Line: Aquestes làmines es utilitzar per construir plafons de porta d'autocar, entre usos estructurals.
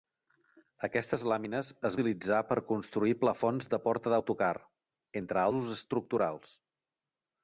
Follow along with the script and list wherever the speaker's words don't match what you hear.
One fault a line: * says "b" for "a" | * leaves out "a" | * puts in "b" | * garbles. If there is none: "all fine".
all fine